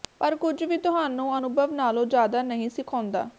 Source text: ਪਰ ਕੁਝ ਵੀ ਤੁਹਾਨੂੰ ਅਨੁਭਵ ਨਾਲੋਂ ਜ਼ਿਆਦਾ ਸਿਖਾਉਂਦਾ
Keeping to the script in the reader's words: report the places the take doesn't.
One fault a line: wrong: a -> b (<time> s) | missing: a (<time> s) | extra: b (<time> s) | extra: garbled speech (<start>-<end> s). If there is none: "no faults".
extra: ਨਹੀਂ (2.4 s)